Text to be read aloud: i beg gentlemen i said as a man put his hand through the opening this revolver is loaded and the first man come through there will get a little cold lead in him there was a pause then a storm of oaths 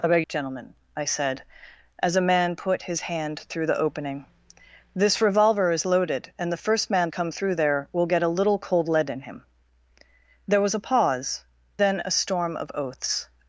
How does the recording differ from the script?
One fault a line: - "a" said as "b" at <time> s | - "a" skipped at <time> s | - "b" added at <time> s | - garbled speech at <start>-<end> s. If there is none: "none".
none